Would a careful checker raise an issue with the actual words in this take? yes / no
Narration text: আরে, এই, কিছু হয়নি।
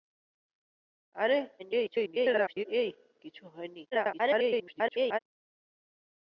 yes